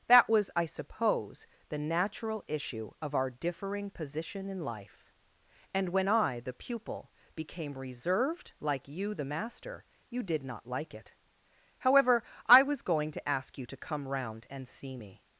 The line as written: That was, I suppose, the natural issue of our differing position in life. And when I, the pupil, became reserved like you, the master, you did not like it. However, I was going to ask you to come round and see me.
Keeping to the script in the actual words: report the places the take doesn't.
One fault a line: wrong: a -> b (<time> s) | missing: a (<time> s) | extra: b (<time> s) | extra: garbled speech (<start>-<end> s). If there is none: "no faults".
no faults